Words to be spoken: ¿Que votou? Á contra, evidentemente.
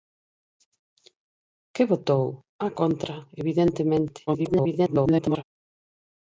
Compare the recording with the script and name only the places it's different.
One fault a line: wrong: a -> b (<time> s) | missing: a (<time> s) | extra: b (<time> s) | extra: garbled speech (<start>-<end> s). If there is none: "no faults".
extra: garbled speech (4.3-5.4 s)